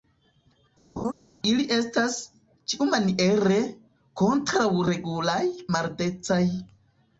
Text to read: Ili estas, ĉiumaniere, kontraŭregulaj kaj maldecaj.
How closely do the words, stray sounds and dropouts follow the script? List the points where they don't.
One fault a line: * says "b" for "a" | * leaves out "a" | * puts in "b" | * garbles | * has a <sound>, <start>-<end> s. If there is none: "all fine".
* has a laugh, 1.0-1.1 s
* leaves out "kaj"